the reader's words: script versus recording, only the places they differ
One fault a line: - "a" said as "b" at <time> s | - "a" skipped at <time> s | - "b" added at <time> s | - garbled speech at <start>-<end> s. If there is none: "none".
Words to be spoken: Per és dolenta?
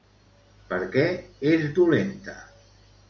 - "què" added at 0.9 s